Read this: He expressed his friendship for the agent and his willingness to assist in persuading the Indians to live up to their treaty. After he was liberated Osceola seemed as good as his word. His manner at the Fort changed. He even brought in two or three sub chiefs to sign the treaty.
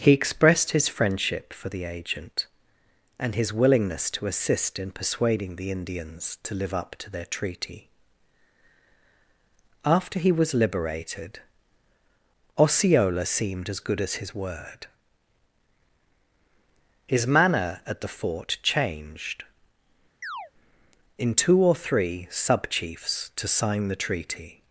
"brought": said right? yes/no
no